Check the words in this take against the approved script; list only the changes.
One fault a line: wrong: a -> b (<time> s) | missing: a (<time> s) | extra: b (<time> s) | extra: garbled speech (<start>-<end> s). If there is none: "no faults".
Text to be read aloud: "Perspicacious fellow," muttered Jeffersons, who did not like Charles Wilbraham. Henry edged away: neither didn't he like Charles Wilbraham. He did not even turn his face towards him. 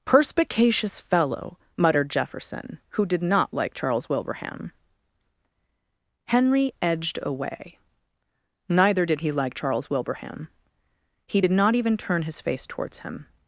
wrong: Jeffersons -> Jefferson (2.1 s)
wrong: didn't -> did (9.1 s)